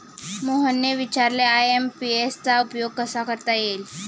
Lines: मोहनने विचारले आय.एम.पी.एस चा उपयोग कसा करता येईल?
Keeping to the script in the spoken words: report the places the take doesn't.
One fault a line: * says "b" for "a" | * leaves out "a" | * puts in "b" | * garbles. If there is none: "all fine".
all fine